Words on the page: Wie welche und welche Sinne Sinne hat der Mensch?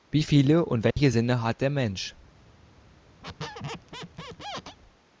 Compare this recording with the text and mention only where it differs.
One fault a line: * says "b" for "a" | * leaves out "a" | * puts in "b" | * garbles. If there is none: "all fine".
* says "viele" for "welche"
* leaves out "Sinne"